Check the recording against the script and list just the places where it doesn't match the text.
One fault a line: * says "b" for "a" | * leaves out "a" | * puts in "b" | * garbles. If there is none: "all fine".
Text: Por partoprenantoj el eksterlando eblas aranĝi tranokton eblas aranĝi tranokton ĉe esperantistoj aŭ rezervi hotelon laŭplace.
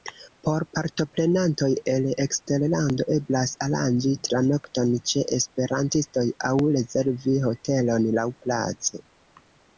* leaves out "eblas aranĝi tranokton"